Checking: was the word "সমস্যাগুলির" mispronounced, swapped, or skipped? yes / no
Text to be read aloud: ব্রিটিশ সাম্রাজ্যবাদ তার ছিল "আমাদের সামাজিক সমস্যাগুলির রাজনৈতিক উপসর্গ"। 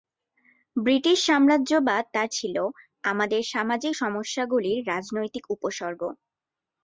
no